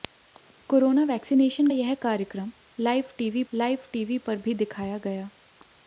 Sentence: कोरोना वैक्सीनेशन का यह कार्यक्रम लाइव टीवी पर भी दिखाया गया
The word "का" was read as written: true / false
false